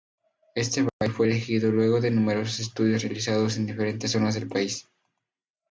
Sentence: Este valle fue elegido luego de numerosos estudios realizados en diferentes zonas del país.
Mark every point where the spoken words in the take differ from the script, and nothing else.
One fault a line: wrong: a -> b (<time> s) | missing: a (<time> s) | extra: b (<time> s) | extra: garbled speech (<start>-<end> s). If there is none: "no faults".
no faults